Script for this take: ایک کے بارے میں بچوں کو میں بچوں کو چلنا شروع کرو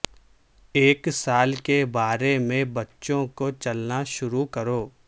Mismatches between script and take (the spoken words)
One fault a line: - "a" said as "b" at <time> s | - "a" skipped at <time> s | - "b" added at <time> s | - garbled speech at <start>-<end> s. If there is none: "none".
- "سال" added at 1.1 s
- "میں بچوں کو" skipped at 3.5 s